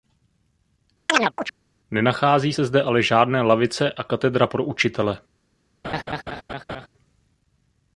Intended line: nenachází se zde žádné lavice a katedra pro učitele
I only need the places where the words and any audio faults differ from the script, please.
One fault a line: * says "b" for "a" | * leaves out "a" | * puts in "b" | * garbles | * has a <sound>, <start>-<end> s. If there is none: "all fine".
* has a chirp, 1.1-1.5 s
* puts in "ale"
* has a laugh, 5.8-6.9 s